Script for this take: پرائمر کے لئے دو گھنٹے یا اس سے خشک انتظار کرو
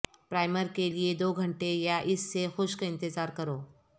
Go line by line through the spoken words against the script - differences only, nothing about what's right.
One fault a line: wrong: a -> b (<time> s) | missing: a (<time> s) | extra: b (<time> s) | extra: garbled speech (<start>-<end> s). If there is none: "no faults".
no faults